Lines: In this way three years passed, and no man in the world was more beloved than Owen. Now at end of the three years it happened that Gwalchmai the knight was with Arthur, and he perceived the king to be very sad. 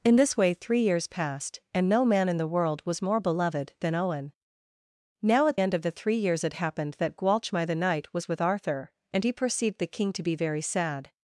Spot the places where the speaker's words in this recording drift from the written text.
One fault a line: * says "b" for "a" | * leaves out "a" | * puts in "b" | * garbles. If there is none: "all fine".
all fine